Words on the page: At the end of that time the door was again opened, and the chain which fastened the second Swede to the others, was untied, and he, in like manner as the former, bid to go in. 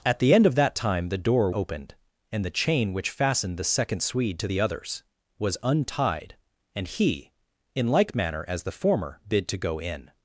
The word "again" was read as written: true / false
false